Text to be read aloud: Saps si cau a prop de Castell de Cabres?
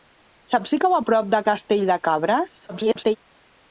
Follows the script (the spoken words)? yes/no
no